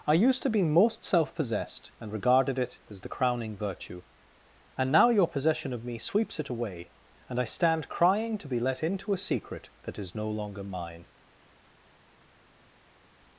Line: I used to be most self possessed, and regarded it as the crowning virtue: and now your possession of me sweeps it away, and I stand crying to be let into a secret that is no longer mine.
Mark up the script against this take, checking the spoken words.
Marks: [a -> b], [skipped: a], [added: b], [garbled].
I used to be most self possessed, and regarded it as the crowning virtue: and now your possession of me sweeps it away, and I stand crying to be let into a secret that is no longer mine.